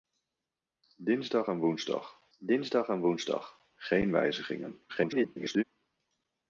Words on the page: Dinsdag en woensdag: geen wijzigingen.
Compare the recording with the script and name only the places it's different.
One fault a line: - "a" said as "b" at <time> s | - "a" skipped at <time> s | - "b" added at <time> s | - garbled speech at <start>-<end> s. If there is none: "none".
- "dinsdag en woensdag" added at 2.4 s
- garbled speech at 4.9-5.6 s